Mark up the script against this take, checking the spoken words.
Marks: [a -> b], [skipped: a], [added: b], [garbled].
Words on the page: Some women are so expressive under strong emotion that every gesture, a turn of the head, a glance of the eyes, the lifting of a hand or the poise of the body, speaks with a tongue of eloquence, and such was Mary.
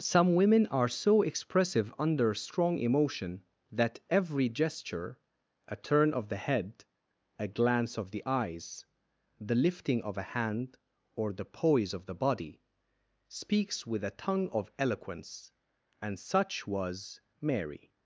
Some women are so expressive under strong emotion that every gesture, a turn of the head, a glance of the eyes, the lifting of a hand or the poise of the body, speaks with a tongue of eloquence, and such was Mary.